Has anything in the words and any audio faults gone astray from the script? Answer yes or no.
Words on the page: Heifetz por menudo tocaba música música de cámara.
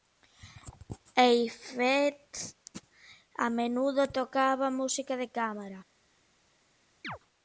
yes